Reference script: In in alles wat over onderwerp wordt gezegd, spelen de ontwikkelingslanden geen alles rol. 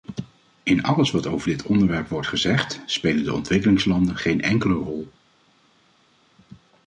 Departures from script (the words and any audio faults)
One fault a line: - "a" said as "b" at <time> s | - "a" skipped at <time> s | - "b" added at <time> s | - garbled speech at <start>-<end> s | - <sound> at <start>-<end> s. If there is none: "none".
- "in" skipped at 0.8 s
- "dit" added at 1.5 s
- "alles" said as "enkele" at 4.4 s